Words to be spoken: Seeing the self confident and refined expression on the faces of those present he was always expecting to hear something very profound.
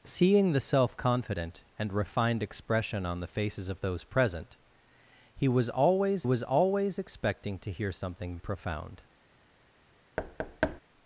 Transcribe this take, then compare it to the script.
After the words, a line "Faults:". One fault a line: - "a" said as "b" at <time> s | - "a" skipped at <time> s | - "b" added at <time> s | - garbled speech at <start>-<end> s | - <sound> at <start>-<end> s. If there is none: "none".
Seeing the self confident and refined expression on the faces of those present he was always was always expecting to hear something profound.
Faults:
- "was always" added at 6.2 s
- "very" skipped at 8.4 s
- thud at 10.2-10.8 s